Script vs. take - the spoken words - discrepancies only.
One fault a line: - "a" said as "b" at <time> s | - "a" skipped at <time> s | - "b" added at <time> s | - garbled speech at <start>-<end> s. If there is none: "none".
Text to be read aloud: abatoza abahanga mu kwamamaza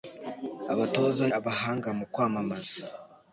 none